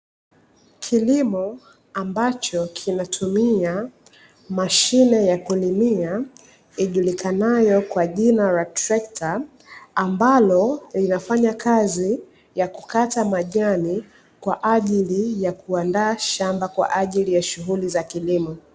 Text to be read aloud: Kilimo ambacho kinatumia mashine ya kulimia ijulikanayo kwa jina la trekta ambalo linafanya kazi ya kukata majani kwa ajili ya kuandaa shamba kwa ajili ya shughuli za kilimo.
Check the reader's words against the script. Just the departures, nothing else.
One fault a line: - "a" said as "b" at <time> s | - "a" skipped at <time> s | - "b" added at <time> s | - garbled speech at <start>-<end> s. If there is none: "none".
none